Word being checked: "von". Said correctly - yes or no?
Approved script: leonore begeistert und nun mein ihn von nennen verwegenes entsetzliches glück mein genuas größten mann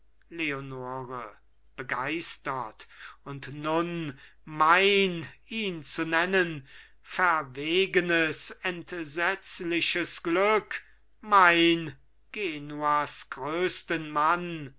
no